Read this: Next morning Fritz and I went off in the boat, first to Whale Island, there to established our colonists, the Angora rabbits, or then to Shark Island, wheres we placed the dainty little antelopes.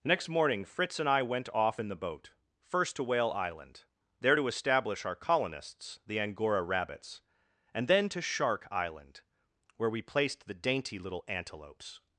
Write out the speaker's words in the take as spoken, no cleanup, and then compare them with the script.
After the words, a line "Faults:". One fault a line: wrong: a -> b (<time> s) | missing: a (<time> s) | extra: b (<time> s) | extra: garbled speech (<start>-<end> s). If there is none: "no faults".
Next morning Fritz and I went off in the boat, first to Whale Island, there to establish our colonists, the Angora rabbits, and then to Shark Island, where we placed the dainty little antelopes.
Faults:
wrong: established -> establish (4.5 s)
wrong: or -> and (7.7 s)
wrong: wheres -> where (9.8 s)